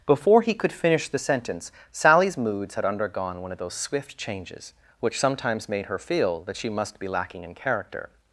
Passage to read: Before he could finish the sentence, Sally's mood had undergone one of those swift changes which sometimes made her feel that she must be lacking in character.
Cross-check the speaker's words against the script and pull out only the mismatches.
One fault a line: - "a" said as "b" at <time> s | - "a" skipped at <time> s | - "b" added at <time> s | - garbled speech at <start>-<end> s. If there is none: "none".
- "mood" said as "moods" at 2.4 s